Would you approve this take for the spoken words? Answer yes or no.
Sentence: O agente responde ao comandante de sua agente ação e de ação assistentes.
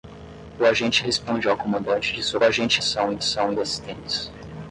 yes